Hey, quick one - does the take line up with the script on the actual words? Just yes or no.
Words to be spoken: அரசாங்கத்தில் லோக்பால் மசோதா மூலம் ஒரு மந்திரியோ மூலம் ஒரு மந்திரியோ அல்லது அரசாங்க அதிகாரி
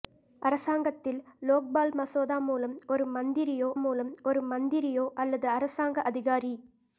yes